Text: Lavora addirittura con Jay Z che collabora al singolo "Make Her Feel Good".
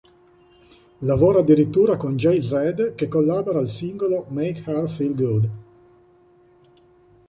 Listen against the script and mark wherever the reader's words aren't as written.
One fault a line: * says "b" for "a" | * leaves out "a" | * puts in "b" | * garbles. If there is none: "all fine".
all fine